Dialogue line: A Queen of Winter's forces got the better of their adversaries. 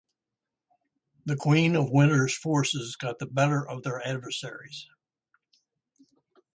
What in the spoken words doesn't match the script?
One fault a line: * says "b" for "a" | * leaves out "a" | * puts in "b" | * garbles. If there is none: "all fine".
* says "The" for "A"